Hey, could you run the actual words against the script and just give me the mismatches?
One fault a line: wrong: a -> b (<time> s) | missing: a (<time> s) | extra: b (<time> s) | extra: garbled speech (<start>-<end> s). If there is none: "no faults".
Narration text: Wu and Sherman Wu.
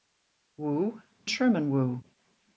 missing: and (1.0 s)